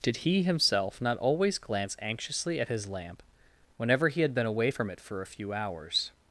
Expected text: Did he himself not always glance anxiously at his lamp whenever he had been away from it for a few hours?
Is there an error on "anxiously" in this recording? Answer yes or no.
no